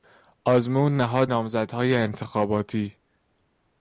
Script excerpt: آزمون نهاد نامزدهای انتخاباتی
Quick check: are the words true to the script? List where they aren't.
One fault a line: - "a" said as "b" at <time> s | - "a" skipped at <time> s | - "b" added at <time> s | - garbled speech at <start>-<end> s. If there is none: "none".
none